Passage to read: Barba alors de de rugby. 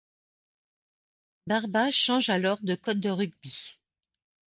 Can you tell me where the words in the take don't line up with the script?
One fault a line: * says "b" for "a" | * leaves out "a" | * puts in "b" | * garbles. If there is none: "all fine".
* puts in "change"
* puts in "code"